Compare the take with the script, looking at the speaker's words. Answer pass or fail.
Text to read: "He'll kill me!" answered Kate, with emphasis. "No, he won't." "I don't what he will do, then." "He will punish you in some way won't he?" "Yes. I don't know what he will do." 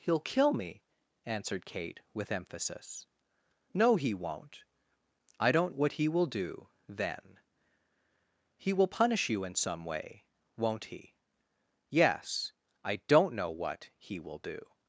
pass